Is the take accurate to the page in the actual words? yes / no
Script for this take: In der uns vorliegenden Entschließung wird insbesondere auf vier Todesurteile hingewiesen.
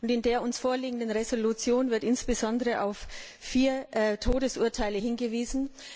yes